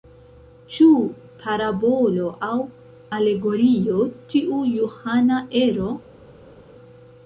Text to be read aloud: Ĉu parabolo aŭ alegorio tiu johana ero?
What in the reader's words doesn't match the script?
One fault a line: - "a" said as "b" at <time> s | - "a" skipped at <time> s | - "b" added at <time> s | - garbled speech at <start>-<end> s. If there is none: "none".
none